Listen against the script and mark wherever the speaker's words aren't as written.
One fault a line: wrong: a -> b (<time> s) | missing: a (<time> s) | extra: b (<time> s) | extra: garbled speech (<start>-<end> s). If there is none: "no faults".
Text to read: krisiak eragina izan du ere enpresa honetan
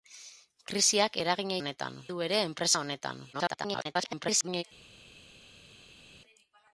wrong: izan -> honetan (1.6 s)
extra: garbled speech (3.3-4.6 s)